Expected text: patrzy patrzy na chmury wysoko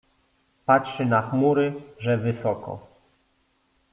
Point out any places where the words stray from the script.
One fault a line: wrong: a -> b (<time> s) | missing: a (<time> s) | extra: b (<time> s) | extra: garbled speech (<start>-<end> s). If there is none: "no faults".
missing: patrzy (1.1 s)
extra: że (2.0 s)